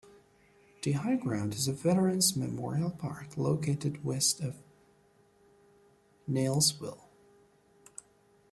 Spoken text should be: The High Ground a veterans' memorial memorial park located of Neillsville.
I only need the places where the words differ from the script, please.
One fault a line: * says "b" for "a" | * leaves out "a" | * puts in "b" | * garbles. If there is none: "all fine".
* puts in "is"
* leaves out "memorial"
* puts in "west"